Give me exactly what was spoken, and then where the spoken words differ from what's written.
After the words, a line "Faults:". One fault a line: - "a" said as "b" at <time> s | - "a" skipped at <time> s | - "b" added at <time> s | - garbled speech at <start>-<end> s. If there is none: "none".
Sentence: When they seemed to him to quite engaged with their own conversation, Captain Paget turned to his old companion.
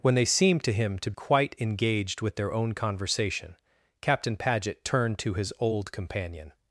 When they seemed to him to quite engaged with their own conversation, Captain Paget turned to his old companion.
Faults:
none